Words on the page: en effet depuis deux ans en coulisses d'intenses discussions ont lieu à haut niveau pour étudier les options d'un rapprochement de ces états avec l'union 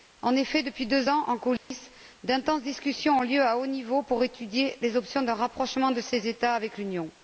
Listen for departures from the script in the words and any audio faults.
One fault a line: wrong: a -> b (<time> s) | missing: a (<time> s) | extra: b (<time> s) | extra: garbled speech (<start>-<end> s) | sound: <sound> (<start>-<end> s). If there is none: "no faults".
sound: dropout (1.6-1.7 s)